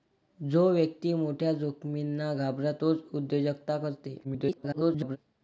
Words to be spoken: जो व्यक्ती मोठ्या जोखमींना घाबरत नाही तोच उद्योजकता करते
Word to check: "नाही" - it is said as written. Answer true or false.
false